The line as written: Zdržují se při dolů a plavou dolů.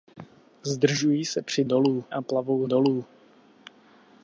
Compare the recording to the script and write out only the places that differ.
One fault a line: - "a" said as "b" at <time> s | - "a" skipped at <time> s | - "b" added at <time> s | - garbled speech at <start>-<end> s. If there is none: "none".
none